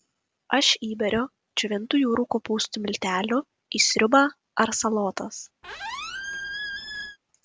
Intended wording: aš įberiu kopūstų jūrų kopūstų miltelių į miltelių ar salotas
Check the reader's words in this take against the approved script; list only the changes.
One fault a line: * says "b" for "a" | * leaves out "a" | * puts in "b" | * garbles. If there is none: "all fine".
* says "džiovintų" for "kopūstų"
* says "sriubą" for "miltelių"